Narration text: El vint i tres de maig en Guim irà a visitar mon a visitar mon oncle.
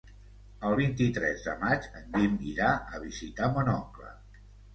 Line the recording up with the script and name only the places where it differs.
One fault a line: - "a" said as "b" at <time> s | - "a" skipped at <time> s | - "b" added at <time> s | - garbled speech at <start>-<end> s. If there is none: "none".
- "a visitar mon" skipped at 3.7 s